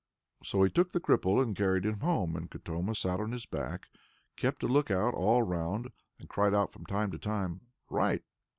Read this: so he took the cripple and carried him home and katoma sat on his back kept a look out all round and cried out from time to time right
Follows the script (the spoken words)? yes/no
yes